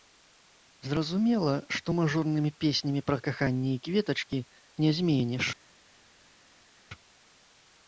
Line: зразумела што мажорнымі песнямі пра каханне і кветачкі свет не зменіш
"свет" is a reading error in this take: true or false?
true